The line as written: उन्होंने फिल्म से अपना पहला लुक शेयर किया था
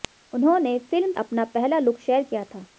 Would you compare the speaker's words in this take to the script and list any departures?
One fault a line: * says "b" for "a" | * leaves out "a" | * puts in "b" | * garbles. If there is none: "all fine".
* leaves out "से"